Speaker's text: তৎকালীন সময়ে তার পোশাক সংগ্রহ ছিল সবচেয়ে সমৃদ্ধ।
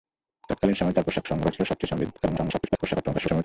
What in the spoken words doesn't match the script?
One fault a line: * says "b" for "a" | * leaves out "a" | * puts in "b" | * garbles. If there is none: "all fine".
* garbles